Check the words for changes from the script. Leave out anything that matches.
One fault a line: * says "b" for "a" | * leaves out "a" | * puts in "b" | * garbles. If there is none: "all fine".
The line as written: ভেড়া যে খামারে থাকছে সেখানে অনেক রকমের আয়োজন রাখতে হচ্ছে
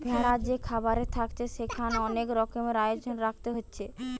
all fine